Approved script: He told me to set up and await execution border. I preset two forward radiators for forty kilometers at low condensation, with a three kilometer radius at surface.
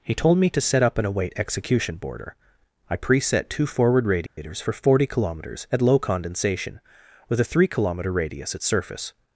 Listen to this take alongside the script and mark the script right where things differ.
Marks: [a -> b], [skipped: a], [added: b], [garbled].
He told me to set up and await execution border. I preset two forward radiators for forty kilometers at low condensation, with a three kilometer radius at surface.